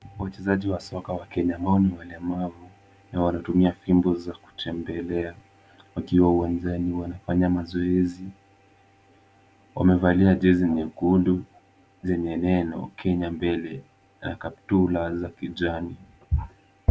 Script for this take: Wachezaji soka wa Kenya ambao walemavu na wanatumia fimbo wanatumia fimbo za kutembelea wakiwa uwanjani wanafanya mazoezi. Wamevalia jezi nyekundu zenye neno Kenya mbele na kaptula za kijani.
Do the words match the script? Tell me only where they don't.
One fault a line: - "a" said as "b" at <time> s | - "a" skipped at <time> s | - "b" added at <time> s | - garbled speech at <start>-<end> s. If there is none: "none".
- "wa" added at 0.7 s
- "ni" added at 1.8 s
- "wanatumia fimbo" skipped at 4.2 s